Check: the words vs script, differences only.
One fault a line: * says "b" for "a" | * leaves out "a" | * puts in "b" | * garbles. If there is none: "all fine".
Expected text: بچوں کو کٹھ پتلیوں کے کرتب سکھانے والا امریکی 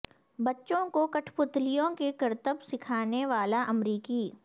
all fine